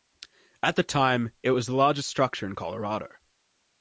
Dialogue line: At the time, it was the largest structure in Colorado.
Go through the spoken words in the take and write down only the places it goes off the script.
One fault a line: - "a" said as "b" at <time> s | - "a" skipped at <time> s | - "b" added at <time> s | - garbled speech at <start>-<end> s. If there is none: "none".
none